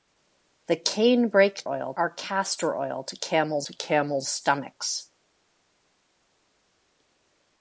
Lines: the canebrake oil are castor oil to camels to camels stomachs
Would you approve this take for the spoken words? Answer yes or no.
yes